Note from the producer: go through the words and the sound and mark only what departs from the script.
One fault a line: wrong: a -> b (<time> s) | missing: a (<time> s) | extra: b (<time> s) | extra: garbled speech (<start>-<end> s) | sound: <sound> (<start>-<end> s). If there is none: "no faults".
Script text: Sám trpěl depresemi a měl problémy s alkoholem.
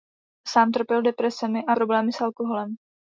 missing: měl (1.8 s)